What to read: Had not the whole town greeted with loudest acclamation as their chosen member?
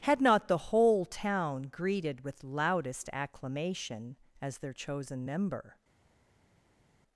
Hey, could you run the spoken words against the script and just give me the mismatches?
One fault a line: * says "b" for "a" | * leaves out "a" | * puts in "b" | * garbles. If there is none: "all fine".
all fine